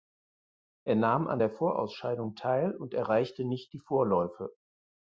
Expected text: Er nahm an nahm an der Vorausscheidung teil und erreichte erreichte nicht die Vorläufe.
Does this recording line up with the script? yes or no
no